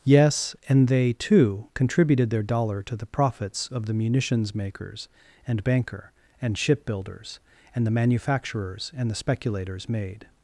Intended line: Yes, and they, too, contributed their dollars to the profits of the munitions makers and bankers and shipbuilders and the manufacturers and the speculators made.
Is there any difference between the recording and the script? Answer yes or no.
yes